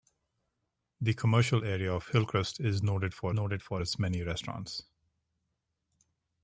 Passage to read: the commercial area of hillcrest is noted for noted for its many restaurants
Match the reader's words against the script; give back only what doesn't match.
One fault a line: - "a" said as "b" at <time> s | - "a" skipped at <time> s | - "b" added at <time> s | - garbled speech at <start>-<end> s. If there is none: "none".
none